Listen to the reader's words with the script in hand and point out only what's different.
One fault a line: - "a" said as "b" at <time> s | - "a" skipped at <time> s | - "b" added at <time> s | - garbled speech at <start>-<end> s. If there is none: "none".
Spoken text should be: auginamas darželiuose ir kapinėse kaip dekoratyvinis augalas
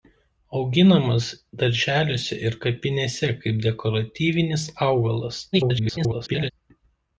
- garbled speech at 5.5-6.5 s